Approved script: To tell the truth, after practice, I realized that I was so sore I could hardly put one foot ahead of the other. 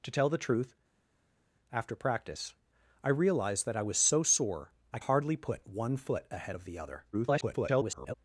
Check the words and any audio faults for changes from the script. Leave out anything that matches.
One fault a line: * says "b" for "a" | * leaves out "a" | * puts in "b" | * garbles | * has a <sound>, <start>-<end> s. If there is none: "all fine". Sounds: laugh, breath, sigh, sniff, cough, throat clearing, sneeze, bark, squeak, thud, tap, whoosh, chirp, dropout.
* leaves out "could"
* garbles